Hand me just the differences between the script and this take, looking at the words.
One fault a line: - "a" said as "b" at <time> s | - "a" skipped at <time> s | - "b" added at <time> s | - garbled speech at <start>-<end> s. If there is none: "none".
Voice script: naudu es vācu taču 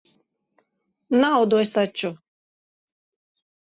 - "vācu" skipped at 1.7 s